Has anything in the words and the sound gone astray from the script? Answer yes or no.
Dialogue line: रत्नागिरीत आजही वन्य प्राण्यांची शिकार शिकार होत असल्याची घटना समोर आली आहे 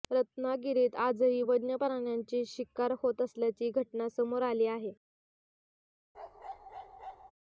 yes